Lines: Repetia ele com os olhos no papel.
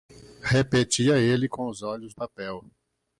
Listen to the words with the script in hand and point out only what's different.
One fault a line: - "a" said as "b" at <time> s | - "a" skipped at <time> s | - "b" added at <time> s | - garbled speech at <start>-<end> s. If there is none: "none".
- "no" skipped at 2.1 s